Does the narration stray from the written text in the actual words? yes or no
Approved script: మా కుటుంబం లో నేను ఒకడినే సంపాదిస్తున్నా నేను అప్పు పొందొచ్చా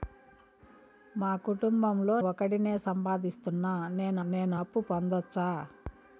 yes